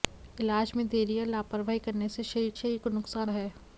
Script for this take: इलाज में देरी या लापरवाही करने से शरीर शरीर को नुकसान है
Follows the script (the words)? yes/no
yes